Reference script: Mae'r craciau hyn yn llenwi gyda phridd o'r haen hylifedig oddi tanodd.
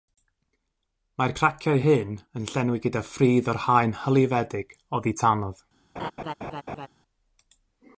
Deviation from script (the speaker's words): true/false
false